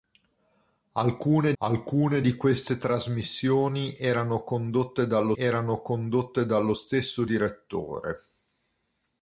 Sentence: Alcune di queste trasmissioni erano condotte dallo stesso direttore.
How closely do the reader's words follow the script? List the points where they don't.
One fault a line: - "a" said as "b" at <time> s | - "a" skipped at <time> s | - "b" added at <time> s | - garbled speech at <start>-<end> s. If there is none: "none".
- "alcune" added at 1.6 s
- "erano condotte dallo" added at 5.3 s